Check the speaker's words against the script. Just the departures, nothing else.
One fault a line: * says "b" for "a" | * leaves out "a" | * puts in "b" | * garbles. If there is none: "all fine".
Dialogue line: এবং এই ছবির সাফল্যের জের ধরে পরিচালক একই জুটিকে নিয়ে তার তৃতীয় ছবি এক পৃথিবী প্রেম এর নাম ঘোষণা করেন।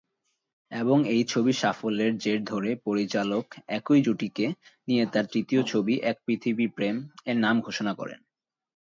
all fine